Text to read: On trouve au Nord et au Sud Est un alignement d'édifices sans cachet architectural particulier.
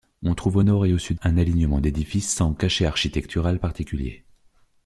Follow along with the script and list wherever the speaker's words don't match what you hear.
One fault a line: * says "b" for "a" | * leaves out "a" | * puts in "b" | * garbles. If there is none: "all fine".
* leaves out "Est"